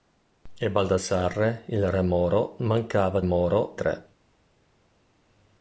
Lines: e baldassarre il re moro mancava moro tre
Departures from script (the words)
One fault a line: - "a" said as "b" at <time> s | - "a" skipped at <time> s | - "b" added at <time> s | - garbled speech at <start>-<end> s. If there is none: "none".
none